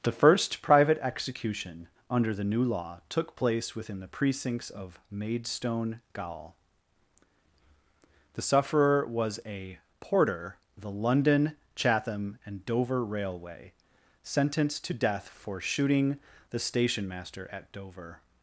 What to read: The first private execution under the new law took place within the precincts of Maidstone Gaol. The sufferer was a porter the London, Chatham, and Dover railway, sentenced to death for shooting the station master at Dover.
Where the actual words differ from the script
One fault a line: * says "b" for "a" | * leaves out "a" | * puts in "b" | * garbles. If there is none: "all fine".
all fine